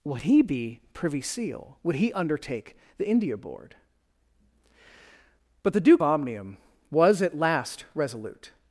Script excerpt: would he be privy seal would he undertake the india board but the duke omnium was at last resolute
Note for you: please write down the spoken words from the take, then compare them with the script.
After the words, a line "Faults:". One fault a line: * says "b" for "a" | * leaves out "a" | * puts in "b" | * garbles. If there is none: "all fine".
would he be privy seal would he undertake the india board but the duke omnium was at last resolute
Faults:
all fine